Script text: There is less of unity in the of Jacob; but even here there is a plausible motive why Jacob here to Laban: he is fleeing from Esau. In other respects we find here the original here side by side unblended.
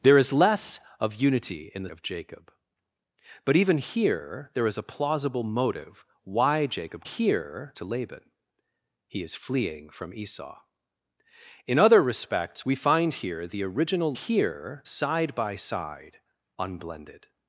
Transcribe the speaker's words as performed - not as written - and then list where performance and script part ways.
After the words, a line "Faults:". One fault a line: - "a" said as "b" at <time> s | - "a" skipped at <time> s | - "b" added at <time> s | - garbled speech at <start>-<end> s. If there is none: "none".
There is less of unity in the of Jacob; but even here there is a plausible motive why Jacob here to Laban: he is fleeing from Esau. In other respects we find here the original here side by side unblended.
Faults:
none